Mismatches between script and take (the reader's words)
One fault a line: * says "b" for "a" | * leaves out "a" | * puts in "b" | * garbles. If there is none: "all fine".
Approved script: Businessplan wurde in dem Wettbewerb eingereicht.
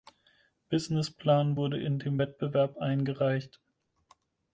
all fine